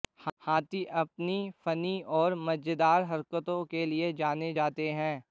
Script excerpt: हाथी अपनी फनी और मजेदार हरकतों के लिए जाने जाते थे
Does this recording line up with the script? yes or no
no